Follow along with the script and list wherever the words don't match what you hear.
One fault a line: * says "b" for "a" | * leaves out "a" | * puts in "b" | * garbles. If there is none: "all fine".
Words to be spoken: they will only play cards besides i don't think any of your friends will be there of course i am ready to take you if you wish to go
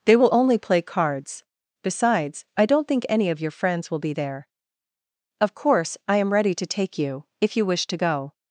all fine